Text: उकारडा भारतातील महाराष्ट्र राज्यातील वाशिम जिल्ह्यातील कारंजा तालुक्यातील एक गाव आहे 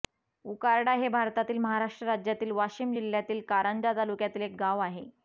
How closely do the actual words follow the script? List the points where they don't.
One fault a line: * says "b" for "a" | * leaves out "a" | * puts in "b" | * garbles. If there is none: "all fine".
* puts in "हे"